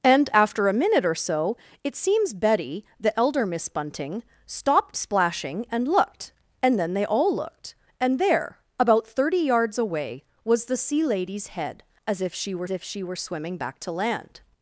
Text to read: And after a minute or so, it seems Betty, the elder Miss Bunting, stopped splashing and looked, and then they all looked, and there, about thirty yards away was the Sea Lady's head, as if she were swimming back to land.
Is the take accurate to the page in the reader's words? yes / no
no